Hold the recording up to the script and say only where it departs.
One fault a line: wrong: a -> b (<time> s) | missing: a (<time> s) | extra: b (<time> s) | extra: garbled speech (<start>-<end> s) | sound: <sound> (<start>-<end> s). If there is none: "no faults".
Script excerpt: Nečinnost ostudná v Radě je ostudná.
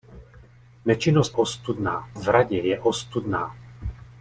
no faults